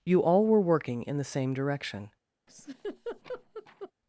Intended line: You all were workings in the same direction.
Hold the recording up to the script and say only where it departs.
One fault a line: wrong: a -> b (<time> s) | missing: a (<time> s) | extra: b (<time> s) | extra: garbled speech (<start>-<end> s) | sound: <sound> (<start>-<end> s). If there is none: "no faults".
wrong: workings -> working (0.6 s)
sound: laugh (2.5-3.9 s)